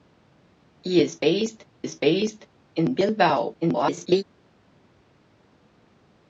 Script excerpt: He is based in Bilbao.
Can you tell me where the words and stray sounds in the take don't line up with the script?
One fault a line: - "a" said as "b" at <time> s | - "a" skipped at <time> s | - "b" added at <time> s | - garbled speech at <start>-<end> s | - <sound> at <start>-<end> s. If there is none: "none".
- "is based" added at 1.8 s
- garbled speech at 3.6-4.2 s